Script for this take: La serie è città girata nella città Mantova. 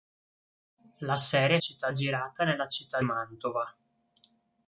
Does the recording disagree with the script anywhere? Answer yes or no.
no